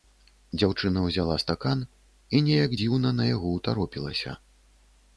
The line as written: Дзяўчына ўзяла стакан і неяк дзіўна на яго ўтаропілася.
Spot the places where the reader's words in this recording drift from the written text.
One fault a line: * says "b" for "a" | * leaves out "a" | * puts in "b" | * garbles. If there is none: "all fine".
all fine